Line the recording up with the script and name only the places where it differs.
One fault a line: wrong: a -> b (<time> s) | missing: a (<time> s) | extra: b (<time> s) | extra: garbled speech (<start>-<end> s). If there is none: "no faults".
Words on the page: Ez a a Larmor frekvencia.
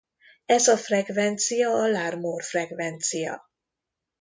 extra: frekvencia (0.8 s)